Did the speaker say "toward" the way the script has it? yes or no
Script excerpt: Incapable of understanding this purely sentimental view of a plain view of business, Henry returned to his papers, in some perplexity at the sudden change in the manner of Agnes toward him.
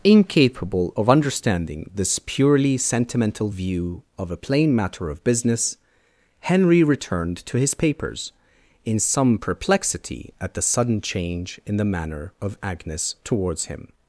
no